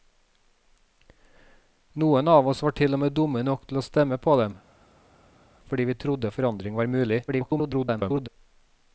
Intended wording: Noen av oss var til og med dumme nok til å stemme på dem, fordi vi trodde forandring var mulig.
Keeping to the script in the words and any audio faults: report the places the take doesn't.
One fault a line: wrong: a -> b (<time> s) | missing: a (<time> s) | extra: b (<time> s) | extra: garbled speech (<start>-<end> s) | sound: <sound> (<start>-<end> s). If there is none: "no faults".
extra: garbled speech (7.3-8.3 s)